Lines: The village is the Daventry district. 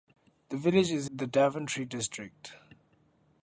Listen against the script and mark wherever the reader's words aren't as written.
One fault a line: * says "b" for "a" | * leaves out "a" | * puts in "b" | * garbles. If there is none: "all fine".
all fine